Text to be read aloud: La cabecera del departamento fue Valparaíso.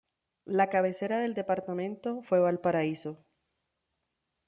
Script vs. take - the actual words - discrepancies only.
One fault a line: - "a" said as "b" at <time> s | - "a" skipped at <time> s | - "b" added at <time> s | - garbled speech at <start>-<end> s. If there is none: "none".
none